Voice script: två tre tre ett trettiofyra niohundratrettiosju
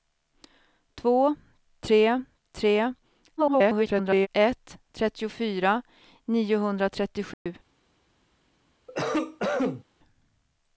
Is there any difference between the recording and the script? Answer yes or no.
yes